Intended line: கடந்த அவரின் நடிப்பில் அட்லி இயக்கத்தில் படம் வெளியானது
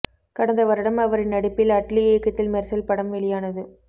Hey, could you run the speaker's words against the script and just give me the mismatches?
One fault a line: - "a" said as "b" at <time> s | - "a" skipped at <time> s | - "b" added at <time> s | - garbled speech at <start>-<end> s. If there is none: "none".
- "வருடம்" added at 0.7 s
- "மெர்சல்" added at 2.5 s